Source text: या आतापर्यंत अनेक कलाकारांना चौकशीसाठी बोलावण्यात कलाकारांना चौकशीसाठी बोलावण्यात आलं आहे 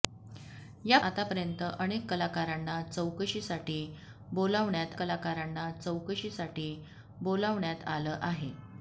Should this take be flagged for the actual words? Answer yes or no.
no